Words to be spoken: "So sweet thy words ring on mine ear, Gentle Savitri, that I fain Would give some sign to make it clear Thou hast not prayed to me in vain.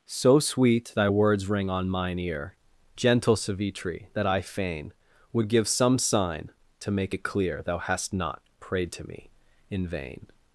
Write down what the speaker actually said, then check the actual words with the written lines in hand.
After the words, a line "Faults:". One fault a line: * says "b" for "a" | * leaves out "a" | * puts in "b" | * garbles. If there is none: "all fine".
"So sweet thy words ring on mine ear, Gentle Savitri, that I fain Would give some sign to make it clear Thou hast not prayed to me in vain.
Faults:
all fine